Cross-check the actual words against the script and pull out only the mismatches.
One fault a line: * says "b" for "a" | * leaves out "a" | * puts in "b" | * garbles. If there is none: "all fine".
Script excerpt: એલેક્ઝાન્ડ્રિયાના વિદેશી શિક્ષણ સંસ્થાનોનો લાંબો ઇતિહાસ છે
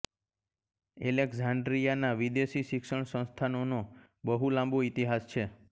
* puts in "બહુ"